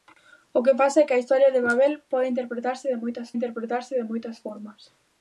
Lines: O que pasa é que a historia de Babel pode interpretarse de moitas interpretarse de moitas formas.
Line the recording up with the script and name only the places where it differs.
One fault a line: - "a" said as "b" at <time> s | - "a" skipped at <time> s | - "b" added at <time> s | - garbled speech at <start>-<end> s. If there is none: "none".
none